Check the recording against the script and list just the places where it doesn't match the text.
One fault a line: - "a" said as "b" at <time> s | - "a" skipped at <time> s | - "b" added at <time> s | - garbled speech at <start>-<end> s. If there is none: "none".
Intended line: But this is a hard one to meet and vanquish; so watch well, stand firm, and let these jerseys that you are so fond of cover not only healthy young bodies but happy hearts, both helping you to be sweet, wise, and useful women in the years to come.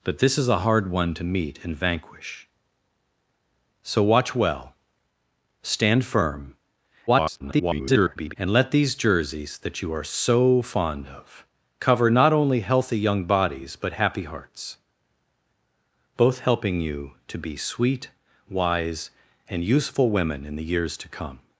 - garbled speech at 7.1-8.3 s